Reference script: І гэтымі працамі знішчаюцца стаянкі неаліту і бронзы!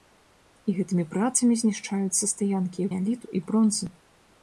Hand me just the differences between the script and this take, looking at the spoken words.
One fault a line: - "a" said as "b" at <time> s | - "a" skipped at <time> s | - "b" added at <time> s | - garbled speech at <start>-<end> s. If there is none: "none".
none